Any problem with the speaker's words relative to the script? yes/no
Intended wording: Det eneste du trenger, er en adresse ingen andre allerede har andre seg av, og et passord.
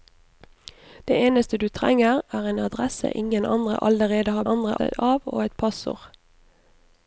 no